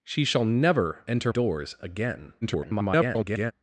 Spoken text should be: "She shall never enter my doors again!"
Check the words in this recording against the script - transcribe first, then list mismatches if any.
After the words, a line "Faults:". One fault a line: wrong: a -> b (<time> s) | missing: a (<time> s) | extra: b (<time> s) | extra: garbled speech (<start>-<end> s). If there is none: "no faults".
"She shall never enter doors again!" [garbled]
Faults:
missing: my (1.3 s)
extra: garbled speech (2.4-3.5 s)